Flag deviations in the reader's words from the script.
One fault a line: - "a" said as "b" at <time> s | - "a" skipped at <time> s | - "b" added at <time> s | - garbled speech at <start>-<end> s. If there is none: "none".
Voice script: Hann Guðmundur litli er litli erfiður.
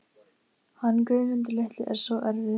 - "litli" said as "svo" at 2.1 s